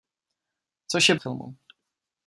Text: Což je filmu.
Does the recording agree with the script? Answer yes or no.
yes